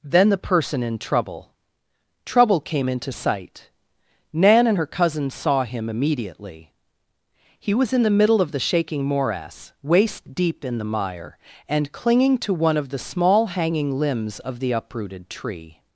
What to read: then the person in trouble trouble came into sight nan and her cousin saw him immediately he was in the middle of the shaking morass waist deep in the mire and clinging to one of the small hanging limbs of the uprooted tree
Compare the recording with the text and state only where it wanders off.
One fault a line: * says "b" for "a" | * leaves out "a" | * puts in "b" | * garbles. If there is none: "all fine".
all fine